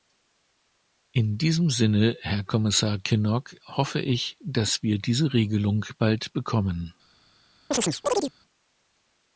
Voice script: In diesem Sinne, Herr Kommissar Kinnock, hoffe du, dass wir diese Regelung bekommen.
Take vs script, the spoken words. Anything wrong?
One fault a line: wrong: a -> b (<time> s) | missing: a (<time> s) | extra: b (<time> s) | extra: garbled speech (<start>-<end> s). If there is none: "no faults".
wrong: du -> ich (4.0 s)
extra: bald (6.0 s)